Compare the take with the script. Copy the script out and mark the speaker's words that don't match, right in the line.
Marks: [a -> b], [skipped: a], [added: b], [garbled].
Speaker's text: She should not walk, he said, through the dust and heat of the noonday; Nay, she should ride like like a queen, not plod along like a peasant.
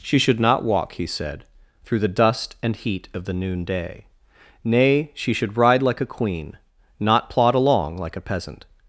She should not walk, he said, through the dust and heat of the noonday; Nay, she should ride like [skipped: like] a queen, not plod along like a peasant.